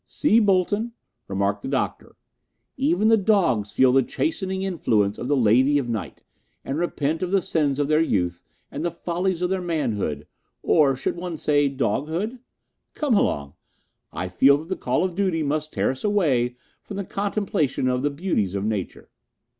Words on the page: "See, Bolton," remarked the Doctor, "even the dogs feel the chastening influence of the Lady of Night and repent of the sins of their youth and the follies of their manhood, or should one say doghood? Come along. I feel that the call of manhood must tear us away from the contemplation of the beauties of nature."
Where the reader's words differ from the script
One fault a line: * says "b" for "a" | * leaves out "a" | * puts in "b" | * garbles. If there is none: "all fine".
* says "duty" for "manhood"